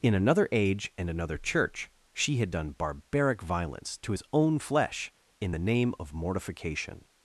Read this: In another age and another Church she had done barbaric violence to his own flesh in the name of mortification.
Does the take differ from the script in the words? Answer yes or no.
no